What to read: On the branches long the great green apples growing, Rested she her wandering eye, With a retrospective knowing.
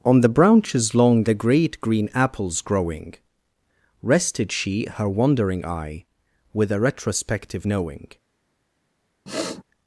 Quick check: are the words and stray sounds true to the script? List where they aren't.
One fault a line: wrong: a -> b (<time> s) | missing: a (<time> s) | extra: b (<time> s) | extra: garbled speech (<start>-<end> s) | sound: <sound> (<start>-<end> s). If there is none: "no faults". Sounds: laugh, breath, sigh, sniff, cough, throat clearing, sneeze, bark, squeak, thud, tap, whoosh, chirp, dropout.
sound: sniff (9.3-9.6 s)